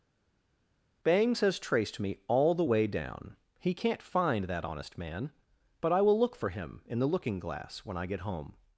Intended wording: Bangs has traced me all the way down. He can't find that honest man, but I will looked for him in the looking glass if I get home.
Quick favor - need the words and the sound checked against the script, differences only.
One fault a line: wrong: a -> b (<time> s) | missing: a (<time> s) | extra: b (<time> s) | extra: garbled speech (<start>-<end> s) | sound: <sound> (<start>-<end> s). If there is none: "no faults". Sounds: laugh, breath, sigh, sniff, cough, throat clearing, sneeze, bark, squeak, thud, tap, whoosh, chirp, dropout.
wrong: looked -> look (6.2 s)
wrong: if -> when (7.8 s)